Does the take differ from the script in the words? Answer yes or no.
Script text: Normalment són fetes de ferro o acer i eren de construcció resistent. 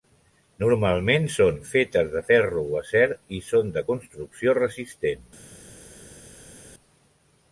yes